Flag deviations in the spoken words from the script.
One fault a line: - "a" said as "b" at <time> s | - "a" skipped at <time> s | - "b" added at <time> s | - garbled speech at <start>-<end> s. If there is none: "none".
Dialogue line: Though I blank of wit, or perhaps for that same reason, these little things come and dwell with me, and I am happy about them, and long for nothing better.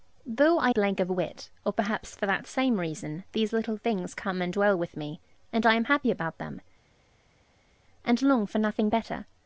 none